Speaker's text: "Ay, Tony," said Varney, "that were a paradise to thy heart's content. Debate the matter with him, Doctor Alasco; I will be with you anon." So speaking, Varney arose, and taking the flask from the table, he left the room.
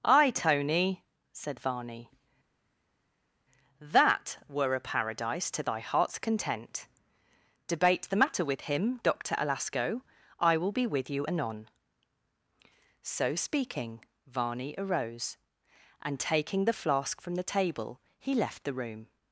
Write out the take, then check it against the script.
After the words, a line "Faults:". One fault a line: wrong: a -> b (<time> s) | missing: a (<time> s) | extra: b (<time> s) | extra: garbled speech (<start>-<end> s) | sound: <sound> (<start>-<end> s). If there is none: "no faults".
"Ay, Tony," said Varney, "that were a paradise to thy heart's content. Debate the matter with him, Doctor Alasco; I will be with you anon." So speaking, Varney arose, and taking the flask from the table, he left the room.
Faults:
no faults